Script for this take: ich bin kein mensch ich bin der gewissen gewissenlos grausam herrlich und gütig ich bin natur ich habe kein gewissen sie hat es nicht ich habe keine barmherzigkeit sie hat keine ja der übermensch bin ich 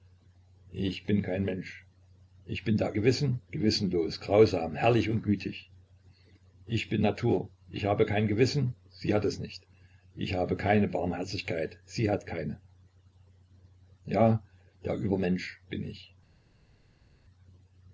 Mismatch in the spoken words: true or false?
false